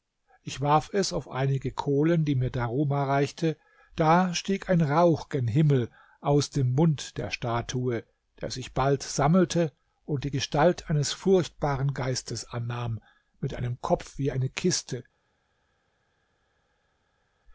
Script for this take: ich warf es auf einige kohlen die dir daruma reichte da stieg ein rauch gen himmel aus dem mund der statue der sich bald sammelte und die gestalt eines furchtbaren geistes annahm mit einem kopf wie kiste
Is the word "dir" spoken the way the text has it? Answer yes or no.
no